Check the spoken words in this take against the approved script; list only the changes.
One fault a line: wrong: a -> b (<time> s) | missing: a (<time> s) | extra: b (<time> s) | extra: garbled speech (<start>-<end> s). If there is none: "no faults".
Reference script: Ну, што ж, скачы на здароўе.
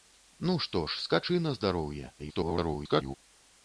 extra: garbled speech (2.2-3.2 s)